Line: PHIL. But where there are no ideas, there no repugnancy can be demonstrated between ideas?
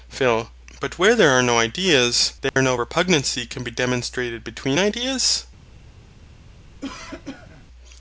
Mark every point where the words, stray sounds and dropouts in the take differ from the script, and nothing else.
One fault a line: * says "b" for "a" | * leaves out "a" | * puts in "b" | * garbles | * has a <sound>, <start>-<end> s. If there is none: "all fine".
* has a dropout, 2.5-2.6 s
* has a cough, 6.8-7.6 s